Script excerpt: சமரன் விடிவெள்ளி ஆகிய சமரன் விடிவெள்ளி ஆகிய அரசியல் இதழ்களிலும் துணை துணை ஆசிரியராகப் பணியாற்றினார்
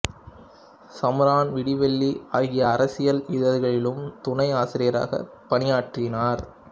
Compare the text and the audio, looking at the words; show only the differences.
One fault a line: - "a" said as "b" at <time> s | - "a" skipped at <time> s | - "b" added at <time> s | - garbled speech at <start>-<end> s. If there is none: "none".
- "சமரன் விடிவெள்ளி ஆகிய" skipped at 2.6 s
- "துணை" skipped at 4.5 s